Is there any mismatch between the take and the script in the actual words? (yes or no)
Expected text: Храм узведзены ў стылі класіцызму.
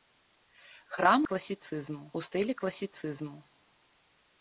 yes